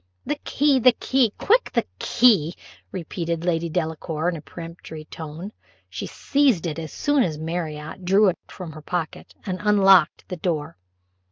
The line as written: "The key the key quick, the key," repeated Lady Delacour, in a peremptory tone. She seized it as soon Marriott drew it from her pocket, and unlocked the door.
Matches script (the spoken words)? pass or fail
fail